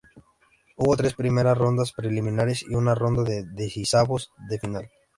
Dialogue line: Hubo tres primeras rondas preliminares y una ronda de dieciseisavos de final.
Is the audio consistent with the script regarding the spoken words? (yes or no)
yes